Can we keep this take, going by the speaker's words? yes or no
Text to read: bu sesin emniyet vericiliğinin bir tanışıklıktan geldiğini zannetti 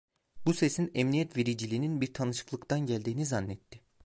yes